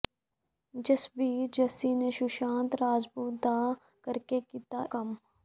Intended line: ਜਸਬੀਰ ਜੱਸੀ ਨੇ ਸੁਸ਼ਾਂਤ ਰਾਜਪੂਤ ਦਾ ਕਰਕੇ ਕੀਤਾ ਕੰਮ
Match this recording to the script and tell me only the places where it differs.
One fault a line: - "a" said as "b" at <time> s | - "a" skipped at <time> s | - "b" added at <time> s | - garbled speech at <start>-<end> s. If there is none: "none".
none